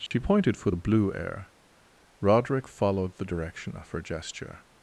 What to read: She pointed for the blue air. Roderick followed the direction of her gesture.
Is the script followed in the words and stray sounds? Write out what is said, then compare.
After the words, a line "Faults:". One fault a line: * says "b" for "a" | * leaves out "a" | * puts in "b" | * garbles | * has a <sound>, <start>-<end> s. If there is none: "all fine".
She pointed for the blue air. Roderick followed the direction of her gesture.
Faults:
* has a dropout, 0.1-0.1 s